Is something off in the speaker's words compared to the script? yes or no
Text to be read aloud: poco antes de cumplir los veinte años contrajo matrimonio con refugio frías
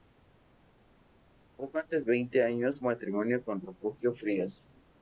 yes